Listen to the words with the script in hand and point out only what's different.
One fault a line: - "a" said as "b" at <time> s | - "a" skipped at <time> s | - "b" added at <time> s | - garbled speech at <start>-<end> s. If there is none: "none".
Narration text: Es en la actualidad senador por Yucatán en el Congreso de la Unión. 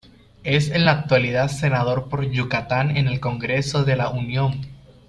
none